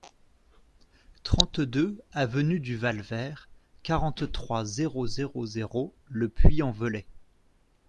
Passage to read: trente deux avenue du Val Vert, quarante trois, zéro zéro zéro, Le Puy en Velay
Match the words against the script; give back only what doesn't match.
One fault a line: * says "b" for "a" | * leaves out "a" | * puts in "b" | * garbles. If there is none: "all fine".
all fine